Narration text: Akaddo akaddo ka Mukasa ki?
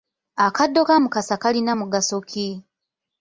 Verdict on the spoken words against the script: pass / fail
fail